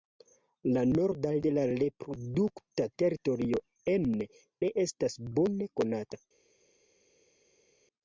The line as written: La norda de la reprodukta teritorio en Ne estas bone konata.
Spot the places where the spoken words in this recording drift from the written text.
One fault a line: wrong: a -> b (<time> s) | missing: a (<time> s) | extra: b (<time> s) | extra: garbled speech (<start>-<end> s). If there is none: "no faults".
no faults